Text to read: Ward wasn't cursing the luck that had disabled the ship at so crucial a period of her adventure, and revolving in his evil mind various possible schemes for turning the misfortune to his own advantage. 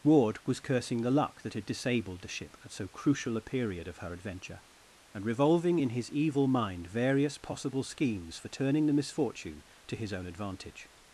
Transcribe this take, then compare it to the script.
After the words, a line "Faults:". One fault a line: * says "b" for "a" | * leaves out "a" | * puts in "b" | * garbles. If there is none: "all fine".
Ward was cursing the luck that had disabled the ship at so crucial a period of her adventure, and revolving in his evil mind various possible schemes for turning the misfortune to his own advantage.
Faults:
* says "was" for "wasn't"